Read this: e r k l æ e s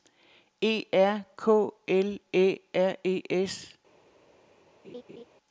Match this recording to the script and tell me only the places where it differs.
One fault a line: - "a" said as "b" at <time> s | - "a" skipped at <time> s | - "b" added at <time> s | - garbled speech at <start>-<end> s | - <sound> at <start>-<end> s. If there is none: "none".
- "r" added at 2.7 s
- laugh at 4.8-5.2 s